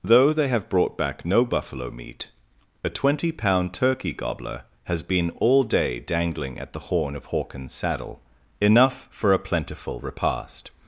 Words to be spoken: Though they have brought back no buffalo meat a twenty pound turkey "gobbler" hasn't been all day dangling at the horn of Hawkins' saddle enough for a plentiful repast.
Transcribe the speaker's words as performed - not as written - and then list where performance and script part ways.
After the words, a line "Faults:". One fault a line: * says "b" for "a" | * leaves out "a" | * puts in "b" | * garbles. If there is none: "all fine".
Though they have brought back no buffalo meat a twenty pound turkey "gobbler" has been all day dangling at the horn of Hawkins' saddle enough for a plentiful repast.
Faults:
* says "has" for "hasn't"